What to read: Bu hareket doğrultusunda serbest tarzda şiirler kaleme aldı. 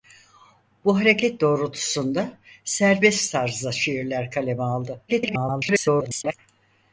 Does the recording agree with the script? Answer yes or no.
no